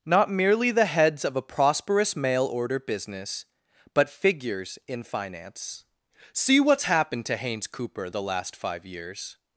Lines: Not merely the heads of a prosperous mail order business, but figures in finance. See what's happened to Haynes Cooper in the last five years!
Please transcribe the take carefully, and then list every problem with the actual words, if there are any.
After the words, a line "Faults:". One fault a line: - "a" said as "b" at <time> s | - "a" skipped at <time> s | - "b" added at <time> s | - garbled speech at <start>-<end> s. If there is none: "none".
Not merely the heads of a prosperous mail order business, but figures in finance. See what's happened to Haynes Cooper the last five years!
Faults:
- "in" skipped at 8.1 s